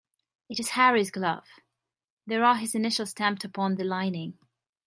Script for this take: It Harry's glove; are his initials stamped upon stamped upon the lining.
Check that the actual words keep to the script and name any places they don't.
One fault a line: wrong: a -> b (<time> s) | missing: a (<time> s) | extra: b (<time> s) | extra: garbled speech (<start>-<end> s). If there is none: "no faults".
extra: is (0.6 s)
extra: there (2.2 s)
missing: stamped upon (3.7 s)